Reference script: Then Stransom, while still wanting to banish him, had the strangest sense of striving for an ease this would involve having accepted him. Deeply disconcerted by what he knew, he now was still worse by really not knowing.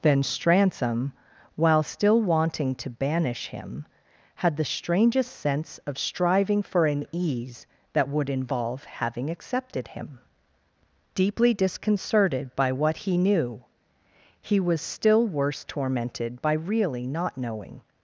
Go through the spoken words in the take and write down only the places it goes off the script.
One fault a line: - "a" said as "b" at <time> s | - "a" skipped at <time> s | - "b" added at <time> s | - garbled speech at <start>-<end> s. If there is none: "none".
- "this" said as "that" at 7.9 s
- "now" skipped at 14.6 s
- "tormented" added at 15.6 s